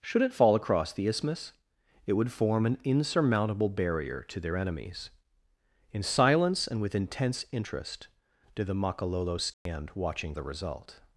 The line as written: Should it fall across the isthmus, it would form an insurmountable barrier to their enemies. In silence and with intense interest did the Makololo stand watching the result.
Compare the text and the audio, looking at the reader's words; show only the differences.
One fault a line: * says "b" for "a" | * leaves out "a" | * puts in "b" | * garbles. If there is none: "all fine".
all fine